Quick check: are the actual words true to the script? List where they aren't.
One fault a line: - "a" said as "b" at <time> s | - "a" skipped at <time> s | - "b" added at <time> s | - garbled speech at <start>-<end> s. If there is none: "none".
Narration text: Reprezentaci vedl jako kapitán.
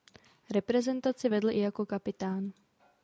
- "i" added at 1.5 s